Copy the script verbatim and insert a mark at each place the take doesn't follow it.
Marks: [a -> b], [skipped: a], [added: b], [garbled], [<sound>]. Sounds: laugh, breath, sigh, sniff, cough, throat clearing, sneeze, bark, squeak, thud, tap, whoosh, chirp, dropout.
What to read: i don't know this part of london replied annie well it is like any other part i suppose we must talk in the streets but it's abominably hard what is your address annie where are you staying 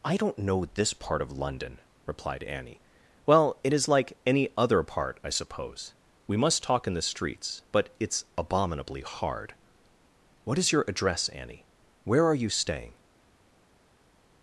i don't know this part of london replied annie well it is like any other part i suppose we must talk in the streets but it's abominably hard what is your address annie where are you staying